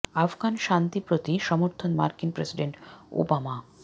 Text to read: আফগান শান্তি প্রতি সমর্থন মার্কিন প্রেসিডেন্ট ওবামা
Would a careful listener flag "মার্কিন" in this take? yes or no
no